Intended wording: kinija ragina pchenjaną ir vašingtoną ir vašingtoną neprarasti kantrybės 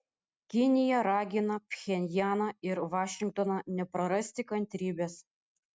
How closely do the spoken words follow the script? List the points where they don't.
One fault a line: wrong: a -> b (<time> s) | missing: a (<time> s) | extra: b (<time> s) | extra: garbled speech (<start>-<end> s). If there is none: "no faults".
missing: ir vašingtoną (3.6 s)